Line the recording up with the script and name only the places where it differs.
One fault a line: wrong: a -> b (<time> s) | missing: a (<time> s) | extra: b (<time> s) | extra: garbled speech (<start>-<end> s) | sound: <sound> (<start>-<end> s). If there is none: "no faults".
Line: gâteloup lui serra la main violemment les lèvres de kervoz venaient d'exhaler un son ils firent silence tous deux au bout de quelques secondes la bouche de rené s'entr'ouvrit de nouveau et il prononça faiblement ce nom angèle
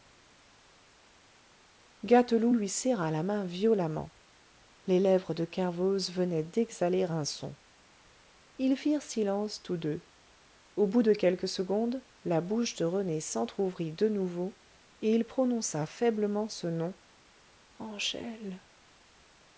no faults